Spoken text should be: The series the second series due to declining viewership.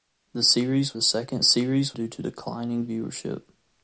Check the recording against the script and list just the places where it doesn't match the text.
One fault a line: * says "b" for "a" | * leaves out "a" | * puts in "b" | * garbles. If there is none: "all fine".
all fine